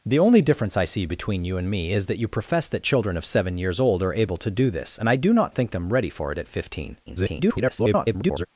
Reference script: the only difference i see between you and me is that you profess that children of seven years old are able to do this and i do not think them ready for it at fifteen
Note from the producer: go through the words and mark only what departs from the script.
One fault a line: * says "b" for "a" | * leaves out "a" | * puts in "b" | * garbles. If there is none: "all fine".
* garbles